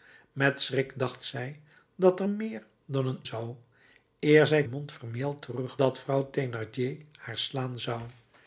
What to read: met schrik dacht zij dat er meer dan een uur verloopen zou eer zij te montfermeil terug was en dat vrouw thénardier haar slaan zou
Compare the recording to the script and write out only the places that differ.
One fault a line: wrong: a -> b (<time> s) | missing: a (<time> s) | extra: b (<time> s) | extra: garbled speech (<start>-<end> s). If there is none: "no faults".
missing: uur verloopen (3.2 s)
missing: te (4.6 s)
missing: was en (5.8 s)